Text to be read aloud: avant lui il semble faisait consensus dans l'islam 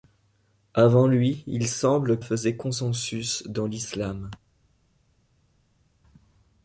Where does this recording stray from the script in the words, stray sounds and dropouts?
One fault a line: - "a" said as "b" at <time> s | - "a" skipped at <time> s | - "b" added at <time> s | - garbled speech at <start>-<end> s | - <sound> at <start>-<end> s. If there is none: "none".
none